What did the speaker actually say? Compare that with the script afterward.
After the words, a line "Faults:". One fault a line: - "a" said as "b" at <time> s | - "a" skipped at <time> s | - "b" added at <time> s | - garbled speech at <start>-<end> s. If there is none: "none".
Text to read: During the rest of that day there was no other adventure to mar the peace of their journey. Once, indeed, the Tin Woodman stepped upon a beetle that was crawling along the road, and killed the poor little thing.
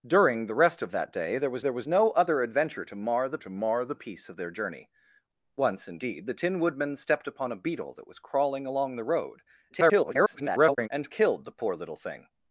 During the rest of that day there was there was no other adventure to mar the to mar the peace of their journey. Once, indeed, the Tin Woodman stepped upon a beetle that was crawling along the road, [garbled] and killed the poor little thing.
Faults:
- "there was" added at 1.6 s
- "to mar the" added at 3.4 s
- garbled speech at 9.7-10.9 s